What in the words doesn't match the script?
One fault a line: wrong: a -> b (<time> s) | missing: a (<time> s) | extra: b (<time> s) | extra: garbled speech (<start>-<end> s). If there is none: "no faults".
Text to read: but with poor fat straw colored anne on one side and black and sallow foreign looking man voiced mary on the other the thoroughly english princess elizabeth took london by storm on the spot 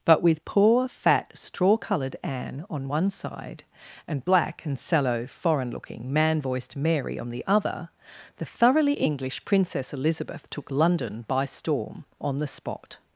no faults